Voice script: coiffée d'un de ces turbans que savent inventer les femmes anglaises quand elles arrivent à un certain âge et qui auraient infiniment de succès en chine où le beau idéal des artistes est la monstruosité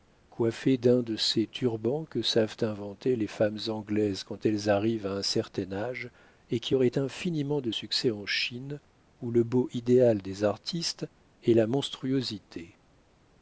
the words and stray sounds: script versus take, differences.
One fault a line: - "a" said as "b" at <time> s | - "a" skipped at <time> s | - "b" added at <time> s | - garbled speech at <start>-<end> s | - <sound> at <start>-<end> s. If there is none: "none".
none